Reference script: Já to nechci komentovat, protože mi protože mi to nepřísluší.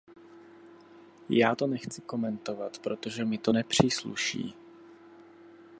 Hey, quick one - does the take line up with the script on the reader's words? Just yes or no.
no